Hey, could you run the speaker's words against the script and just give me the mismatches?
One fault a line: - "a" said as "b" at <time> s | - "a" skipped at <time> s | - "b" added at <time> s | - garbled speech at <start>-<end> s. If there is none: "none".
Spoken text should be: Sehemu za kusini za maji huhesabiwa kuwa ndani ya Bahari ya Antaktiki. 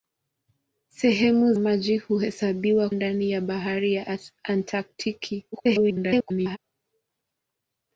- "za kusini za" skipped at 1.5 s
- "kuwa" skipped at 2.9 s
- garbled speech at 5.5-6.6 s